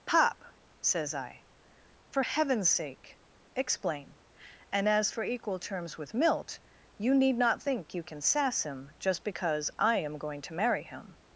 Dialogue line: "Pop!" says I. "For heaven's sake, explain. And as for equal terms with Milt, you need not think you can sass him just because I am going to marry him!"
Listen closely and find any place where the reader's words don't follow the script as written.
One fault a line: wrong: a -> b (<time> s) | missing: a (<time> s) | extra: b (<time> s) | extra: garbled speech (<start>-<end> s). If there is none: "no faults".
no faults